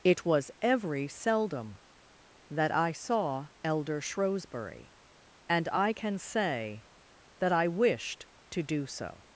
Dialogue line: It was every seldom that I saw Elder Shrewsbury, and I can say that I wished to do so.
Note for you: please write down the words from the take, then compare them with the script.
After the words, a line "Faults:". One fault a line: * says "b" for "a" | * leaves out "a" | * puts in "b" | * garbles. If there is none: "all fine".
It was every seldom that I saw Elder Shrewsbury, and I can say that I wished to do so.
Faults:
all fine